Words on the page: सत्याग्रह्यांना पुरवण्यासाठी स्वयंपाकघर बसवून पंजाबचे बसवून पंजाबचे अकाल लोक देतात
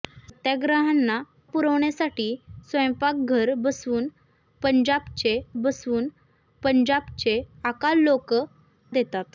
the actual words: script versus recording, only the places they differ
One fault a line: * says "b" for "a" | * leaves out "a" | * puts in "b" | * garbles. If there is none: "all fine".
all fine